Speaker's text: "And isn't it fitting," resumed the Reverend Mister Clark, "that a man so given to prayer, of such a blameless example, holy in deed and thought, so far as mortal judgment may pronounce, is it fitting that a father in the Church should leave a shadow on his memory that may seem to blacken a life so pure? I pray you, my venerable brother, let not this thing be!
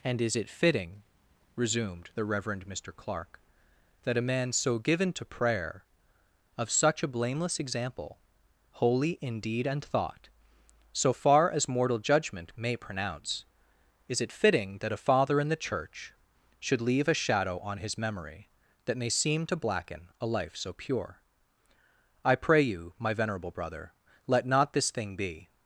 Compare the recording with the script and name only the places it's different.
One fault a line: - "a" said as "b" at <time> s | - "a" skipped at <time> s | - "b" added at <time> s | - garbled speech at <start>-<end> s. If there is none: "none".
- "isn't" said as "is" at 0.2 s